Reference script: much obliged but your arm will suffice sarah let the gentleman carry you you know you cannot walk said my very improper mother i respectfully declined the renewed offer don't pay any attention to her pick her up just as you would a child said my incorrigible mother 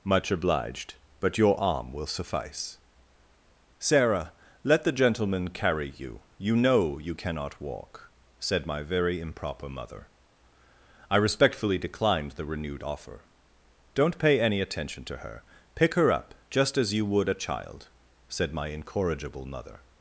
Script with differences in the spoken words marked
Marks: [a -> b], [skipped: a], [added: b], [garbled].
much obliged but your arm will suffice sarah let the gentleman carry you you know you cannot walk said my very improper mother i respectfully declined the renewed offer don't pay any attention to her pick her up just as you would a child said my incorrigible mother